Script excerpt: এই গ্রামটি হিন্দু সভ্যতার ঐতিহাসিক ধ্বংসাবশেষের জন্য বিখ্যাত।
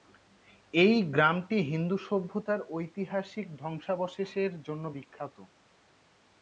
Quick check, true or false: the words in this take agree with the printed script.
true